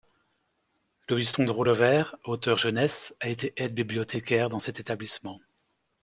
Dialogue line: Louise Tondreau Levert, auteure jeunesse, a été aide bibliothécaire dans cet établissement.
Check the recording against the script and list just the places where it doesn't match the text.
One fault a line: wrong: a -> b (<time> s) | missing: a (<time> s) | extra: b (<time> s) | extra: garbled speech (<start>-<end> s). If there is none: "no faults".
no faults